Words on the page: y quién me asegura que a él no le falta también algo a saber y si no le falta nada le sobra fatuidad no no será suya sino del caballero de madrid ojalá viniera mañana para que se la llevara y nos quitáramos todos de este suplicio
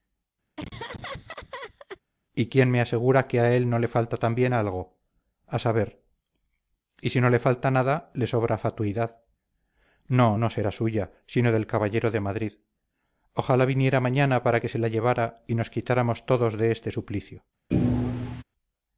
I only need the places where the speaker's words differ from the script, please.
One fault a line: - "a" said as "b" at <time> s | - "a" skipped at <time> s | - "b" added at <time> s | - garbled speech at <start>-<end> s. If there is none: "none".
none